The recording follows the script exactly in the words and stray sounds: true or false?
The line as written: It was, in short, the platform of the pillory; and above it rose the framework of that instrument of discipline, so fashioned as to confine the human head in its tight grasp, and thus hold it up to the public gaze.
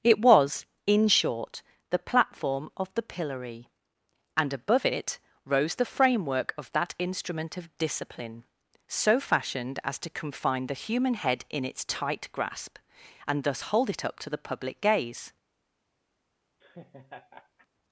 false